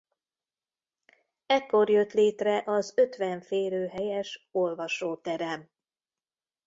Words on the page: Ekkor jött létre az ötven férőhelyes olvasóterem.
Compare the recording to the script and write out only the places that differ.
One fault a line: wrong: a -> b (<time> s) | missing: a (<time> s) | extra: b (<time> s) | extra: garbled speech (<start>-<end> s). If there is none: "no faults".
no faults